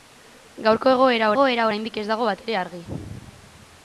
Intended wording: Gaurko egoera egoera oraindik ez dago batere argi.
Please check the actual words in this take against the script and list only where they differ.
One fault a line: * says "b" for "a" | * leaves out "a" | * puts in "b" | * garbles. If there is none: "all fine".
all fine